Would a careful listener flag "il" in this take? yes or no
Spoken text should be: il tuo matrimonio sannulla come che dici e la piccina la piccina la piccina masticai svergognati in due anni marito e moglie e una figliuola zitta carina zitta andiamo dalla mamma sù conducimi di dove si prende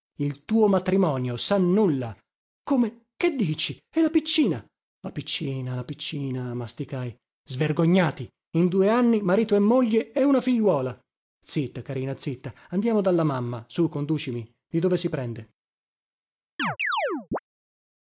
no